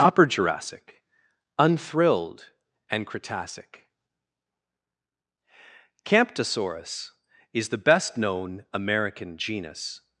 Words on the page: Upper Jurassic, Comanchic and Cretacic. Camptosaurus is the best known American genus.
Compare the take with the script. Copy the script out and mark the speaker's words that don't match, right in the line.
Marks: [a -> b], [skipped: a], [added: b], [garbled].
Upper Jurassic, [Comanchic -> Unthrilled] and Cretacic. Camptosaurus is the best known American genus.